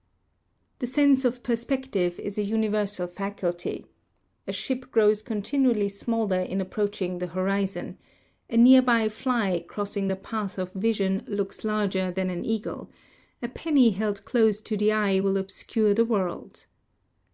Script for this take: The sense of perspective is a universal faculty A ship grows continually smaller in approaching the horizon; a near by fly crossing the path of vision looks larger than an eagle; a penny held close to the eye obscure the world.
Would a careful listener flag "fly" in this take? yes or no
no